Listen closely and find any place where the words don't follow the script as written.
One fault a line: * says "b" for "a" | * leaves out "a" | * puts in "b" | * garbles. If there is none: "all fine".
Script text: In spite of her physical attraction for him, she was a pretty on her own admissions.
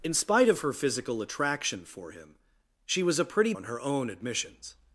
all fine